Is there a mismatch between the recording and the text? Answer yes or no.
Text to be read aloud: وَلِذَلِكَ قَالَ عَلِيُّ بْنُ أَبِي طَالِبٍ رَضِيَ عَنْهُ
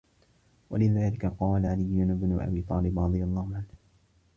yes